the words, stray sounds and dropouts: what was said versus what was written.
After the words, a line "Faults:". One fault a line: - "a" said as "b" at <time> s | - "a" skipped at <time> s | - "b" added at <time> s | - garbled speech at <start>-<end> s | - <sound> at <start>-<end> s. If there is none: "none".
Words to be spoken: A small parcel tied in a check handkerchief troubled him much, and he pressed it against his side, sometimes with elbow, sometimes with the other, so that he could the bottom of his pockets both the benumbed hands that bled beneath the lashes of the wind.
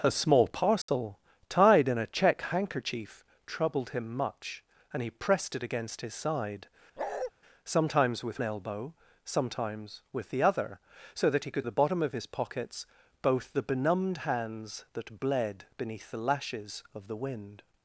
A small parcel tied in a check handkerchief troubled him much, and he pressed it against his side, sometimes with elbow, sometimes with the other, so that he could the bottom of his pockets both the benumbed hands that bled beneath the lashes of the wind.
Faults:
- dropout at 0.8-0.9 s
- bark at 7.0-7.3 s